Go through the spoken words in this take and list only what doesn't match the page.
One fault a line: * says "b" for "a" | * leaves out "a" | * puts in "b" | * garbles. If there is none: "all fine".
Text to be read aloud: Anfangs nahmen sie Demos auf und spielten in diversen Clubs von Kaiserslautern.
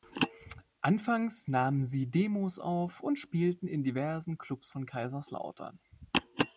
all fine